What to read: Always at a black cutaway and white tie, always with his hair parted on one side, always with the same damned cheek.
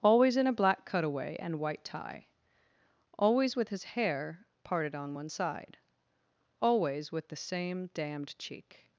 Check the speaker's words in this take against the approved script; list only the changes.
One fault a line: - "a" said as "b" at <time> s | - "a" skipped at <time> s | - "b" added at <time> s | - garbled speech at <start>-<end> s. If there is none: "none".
- "at" said as "in" at 0.3 s